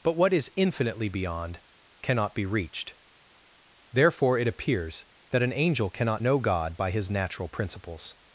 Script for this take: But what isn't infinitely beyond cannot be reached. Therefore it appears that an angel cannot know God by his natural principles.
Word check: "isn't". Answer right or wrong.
wrong